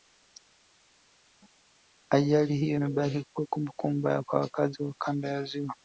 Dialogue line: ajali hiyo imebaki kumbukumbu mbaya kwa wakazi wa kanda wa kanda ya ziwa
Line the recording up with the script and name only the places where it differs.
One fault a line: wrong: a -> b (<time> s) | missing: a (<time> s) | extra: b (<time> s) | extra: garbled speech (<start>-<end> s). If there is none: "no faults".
extra: kuwa (3.3 s)
missing: wa kanda (5.3 s)